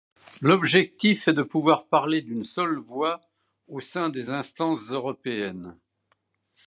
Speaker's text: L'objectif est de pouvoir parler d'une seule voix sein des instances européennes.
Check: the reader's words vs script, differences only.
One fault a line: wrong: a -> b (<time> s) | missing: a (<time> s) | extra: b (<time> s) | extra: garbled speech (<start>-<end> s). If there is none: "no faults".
extra: au (3.7 s)